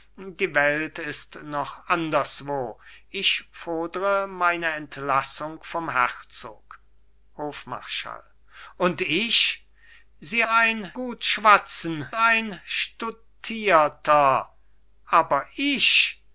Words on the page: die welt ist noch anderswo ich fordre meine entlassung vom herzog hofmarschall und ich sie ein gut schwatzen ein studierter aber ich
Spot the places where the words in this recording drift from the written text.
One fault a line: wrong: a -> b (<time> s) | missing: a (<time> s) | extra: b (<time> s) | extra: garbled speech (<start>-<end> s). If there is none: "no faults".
no faults